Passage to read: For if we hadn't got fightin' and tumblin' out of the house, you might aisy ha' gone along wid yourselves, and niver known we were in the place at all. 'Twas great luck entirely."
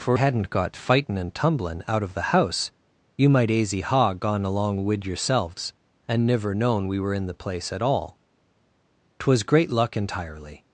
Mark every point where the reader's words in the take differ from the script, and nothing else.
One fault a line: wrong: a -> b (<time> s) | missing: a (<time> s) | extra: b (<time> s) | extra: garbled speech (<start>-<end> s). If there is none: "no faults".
missing: if we (0.2 s)